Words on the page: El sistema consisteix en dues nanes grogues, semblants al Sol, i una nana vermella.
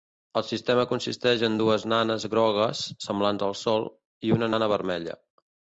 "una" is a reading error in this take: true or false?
false